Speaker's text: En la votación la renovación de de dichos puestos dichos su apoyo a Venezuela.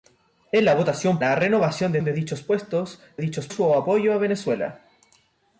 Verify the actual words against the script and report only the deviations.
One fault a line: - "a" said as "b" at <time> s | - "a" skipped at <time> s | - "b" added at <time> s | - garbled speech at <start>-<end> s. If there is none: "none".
none